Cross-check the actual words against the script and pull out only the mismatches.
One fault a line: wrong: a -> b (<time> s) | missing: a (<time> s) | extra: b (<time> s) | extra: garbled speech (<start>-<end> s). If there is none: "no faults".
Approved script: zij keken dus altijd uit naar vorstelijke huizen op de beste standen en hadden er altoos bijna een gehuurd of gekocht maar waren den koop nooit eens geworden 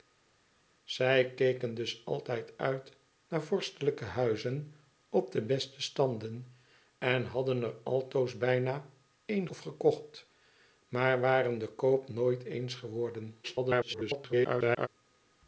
missing: gehuurd (9.5 s)
extra: garbled speech (13.4-14.9 s)